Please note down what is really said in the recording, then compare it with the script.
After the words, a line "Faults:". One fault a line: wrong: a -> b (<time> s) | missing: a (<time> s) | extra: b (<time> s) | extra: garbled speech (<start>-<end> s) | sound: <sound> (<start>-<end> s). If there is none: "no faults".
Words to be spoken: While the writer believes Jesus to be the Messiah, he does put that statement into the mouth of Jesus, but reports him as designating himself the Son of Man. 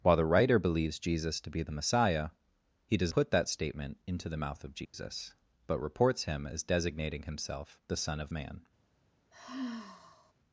While the writer believes Jesus to be the Messiah, he does put that statement into the mouth of Jesus, but reports him as designating himself the Son of Man.
Faults:
sound: dropout (4.8-4.9 s)
sound: sigh (9.3-10.3 s)